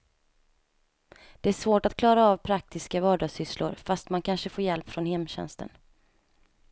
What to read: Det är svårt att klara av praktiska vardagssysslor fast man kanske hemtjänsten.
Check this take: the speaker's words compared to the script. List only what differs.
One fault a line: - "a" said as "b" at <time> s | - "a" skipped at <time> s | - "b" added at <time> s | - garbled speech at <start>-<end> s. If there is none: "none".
- "får hjälp från" added at 4.5 s